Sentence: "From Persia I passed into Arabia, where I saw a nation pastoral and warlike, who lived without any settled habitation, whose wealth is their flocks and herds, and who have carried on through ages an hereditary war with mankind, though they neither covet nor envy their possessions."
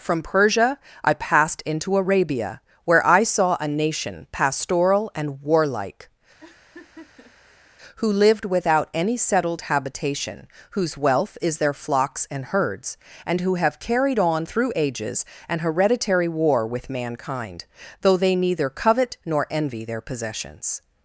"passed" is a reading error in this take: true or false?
false